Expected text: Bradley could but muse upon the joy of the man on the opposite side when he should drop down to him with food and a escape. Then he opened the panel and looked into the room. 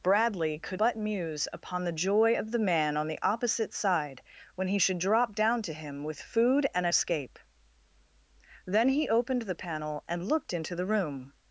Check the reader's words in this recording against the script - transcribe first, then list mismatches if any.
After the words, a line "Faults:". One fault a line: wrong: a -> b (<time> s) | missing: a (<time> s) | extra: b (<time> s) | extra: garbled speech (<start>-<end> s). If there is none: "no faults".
Bradley could but muse upon the joy of the man on the opposite side when he should drop down to him with food and a escape. Then he opened the panel and looked into the room.
Faults:
no faults